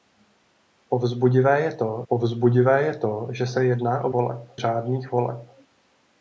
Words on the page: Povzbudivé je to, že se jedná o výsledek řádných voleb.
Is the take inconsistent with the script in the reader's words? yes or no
yes